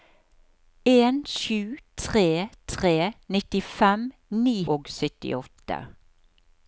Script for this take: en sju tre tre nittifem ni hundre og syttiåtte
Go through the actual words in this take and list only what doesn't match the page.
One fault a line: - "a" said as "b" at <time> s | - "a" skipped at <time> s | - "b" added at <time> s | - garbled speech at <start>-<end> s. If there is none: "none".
- "hundre" skipped at 4.6 s